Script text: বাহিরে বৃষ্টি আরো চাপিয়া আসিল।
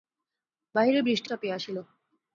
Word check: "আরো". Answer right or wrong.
wrong